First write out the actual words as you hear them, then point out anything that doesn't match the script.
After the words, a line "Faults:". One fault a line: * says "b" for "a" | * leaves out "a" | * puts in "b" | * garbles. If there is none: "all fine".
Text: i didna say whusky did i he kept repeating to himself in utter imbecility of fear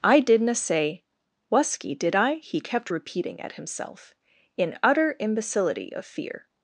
i didna say whusky did i he kept repeating at himself in utter imbecility of fear
Faults:
* says "at" for "to"